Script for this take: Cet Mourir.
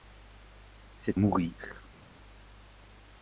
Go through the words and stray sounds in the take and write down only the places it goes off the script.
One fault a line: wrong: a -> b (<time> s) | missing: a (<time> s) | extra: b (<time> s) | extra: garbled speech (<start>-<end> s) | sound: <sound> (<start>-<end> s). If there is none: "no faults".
no faults